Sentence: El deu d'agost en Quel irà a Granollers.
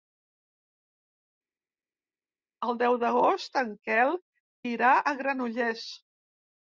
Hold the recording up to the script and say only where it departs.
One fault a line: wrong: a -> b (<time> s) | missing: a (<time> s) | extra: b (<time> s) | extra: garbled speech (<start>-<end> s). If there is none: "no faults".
no faults